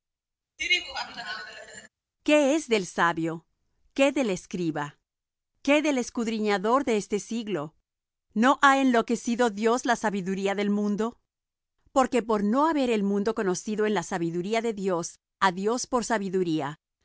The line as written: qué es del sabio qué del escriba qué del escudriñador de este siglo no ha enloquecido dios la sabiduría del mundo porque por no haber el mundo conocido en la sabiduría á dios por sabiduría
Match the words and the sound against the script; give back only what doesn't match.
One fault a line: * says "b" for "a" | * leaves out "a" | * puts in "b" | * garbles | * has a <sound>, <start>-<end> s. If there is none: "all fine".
* has a laugh, 0.6-1.9 s
* puts in "de dios"